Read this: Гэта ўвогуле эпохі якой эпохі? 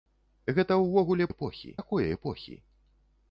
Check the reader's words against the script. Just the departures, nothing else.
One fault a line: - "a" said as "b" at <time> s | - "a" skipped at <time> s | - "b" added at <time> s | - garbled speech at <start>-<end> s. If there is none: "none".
none